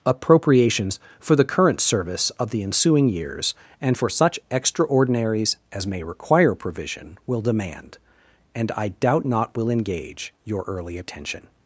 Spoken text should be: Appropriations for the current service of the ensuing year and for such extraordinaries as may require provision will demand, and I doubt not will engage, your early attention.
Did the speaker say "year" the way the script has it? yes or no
no